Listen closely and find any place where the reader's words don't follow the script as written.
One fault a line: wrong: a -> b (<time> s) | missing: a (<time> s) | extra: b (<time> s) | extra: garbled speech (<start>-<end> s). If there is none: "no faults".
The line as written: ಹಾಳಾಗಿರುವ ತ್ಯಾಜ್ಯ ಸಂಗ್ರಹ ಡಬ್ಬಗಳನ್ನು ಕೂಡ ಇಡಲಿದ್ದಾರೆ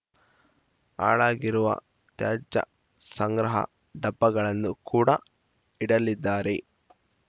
no faults